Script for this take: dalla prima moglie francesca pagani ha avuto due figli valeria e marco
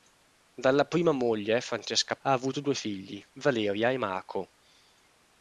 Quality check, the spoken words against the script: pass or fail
fail